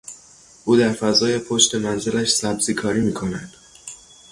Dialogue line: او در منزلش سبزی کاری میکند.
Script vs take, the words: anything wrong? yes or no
yes